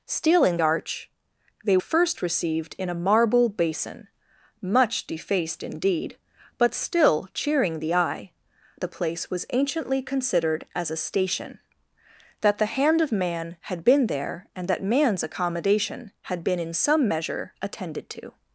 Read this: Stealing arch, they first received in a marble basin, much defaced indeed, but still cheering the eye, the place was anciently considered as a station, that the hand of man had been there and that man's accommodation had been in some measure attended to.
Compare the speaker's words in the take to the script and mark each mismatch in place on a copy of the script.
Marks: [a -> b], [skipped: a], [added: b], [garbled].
Stealing arch, they first received in a marble basin, much defaced indeed, but still cheering the eye, the place was anciently considered as a station, that the hand of man had been there and that man's accommodation had been in some measure attended to.